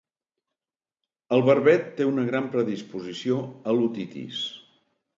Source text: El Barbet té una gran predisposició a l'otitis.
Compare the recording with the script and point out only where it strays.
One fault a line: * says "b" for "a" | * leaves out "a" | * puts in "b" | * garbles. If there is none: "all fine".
all fine